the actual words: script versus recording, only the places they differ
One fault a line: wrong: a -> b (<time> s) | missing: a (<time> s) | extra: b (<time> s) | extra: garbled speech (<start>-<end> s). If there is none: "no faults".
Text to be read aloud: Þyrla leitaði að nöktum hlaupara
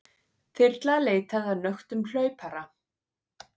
no faults